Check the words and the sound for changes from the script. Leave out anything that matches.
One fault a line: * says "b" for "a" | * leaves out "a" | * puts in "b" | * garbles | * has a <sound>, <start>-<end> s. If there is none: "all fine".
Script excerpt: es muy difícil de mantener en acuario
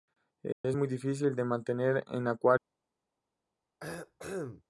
* has a dropout, 0.5-0.6 s
* has a cough, 3.8-4.6 s